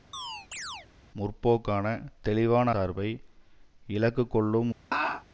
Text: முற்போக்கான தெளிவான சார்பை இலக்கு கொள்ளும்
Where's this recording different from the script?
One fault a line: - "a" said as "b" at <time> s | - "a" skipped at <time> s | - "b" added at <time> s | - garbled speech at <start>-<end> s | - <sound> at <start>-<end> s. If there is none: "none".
- chirp at 0.1-0.9 s
- laugh at 4.9-5.2 s